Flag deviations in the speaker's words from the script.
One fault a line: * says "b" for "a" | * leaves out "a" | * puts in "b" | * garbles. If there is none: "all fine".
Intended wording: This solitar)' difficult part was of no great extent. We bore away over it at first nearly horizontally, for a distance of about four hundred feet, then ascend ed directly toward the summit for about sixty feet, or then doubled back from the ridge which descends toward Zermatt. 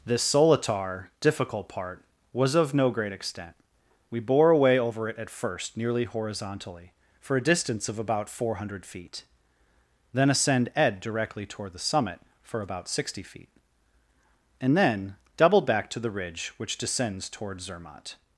* says "and" for "or"
* says "to" for "from"